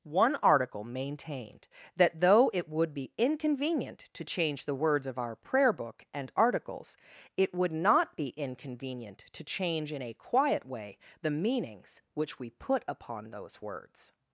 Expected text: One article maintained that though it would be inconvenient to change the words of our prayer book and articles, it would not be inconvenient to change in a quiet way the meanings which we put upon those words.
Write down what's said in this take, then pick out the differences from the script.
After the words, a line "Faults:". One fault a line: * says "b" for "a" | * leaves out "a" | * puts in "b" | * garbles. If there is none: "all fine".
One article maintained that though it would be inconvenient to change the words of our prayer book and articles, it would not be inconvenient to change in a quiet way the meanings which we put upon those words.
Faults:
all fine